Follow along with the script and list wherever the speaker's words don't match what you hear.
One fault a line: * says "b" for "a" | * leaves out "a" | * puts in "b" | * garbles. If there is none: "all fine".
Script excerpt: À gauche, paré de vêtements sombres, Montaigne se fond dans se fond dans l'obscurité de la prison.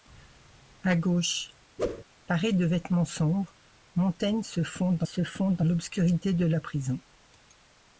all fine